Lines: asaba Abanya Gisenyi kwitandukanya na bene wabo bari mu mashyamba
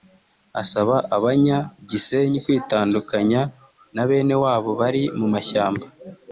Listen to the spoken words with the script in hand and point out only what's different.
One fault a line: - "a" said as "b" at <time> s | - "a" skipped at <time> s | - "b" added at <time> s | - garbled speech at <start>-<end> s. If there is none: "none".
none